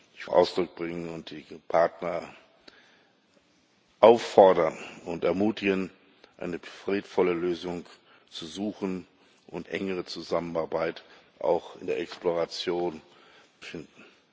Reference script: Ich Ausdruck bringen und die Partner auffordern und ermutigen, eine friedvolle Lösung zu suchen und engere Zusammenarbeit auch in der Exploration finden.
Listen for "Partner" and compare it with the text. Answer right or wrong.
right